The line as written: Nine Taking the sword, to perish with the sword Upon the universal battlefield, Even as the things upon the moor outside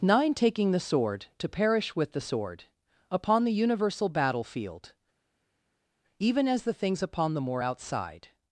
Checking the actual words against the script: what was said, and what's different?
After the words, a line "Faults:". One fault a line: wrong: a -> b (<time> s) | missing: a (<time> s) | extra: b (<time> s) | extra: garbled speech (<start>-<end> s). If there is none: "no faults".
Nine Taking the sword, to perish with the sword Upon the universal battlefield, Even as the things upon the moor outside
Faults:
no faults